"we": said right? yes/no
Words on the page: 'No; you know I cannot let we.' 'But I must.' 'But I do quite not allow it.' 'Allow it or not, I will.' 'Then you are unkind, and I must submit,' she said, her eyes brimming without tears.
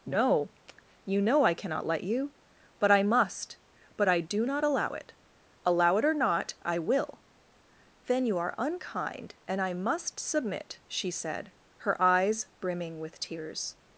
no